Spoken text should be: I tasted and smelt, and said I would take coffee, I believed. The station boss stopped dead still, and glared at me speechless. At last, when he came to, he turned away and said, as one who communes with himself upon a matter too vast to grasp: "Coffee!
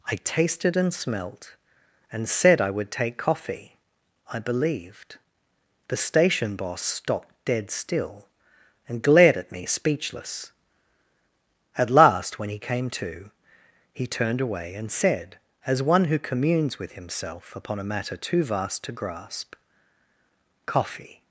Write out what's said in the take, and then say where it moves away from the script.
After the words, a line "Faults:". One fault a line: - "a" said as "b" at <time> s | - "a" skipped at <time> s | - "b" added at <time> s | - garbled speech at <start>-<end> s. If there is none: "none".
I tasted and smelt, and said I would take coffee, I believed. The station boss stopped dead still, and glared at me speechless. At last, when he came to, he turned away and said, as one who communes with himself upon a matter too vast to grasp: "Coffee!
Faults:
none